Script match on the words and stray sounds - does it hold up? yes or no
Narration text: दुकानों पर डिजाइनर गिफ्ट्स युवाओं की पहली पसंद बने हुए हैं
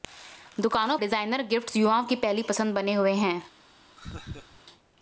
no